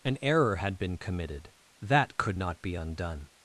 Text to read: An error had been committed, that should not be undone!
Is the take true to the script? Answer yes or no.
no